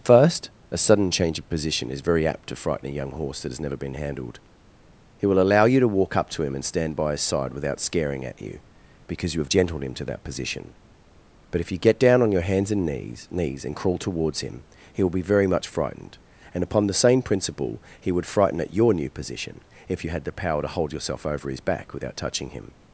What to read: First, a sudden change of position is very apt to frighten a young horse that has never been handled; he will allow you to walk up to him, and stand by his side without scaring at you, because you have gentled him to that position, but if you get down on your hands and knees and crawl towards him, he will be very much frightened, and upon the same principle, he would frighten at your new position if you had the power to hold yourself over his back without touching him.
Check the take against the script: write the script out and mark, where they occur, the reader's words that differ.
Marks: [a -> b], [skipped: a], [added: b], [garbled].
First, a sudden change of position is very apt to frighten a young horse that has never been handled; he will allow you to walk up to him, and stand by his side without scaring at you, because you have gentled him to that position, but if you get down on your hands and knees [added: knees] and crawl towards him, he will be very much frightened, and upon the same principle, he would frighten at your new position if you had the power to hold yourself over his back without touching him.